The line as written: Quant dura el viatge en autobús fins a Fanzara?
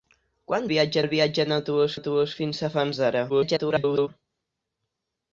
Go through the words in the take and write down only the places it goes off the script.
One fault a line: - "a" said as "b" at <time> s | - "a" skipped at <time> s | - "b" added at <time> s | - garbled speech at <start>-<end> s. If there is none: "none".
- "dura" said as "viatge" at 0.7 s
- "autobús" added at 1.9 s
- garbled speech at 3.3-4.1 s